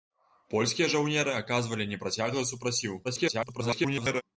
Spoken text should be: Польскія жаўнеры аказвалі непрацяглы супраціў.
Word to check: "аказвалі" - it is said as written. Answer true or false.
true